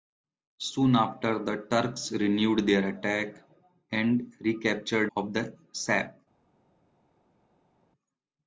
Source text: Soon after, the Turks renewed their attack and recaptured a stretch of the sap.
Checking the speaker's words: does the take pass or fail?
fail